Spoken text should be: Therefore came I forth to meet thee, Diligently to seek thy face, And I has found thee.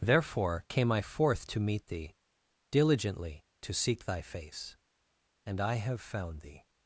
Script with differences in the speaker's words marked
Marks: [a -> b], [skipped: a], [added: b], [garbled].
Therefore came I forth to meet thee, Diligently to seek thy face, And I [has -> have] found thee.